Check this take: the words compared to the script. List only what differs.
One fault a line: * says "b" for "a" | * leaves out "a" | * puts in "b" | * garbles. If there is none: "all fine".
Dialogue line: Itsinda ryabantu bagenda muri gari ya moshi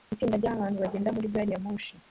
all fine